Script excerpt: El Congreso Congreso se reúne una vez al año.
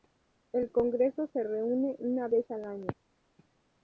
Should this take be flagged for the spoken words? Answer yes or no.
yes